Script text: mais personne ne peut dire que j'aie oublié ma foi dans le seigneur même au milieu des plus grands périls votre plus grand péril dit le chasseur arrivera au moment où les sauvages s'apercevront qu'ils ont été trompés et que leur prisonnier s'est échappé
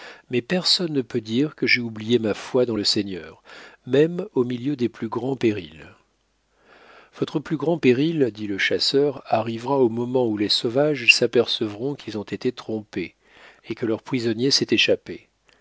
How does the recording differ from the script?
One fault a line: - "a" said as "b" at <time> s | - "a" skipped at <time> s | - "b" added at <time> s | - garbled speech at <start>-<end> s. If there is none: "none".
none